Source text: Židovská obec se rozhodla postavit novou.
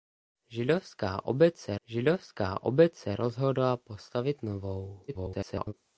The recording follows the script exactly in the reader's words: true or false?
false